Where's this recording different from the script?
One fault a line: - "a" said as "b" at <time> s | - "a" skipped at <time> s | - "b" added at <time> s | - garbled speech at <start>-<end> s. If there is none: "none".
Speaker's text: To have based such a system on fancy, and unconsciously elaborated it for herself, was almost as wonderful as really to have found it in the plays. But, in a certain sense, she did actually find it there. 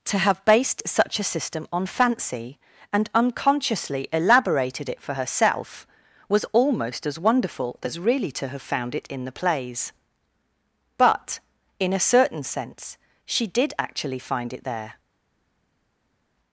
none